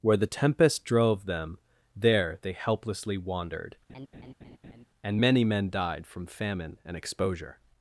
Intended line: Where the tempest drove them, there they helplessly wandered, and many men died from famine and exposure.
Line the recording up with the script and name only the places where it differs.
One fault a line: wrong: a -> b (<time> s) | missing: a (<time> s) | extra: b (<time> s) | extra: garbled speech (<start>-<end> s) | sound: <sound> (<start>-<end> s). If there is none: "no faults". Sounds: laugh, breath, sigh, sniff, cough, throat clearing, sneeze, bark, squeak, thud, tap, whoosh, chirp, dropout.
sound: laugh (3.9-4.9 s)